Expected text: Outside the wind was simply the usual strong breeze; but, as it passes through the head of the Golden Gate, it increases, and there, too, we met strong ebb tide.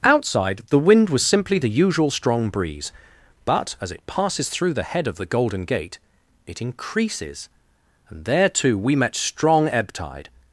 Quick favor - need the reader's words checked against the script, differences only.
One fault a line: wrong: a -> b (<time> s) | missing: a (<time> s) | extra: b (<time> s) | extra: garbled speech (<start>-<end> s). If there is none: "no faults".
no faults